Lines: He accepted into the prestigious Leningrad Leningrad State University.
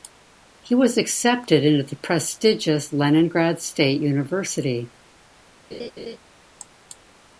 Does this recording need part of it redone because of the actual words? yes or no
yes